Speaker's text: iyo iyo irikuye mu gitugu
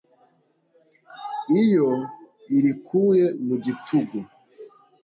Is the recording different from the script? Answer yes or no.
yes